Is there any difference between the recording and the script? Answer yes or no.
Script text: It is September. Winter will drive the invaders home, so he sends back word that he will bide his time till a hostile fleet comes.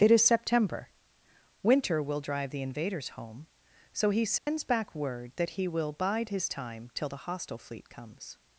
yes